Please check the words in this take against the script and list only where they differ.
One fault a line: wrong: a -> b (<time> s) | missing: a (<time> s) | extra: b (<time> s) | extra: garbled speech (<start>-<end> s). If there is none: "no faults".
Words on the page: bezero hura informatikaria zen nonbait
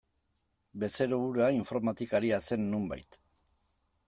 no faults